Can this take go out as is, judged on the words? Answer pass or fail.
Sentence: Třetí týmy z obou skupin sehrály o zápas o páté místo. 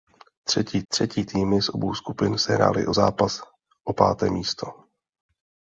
fail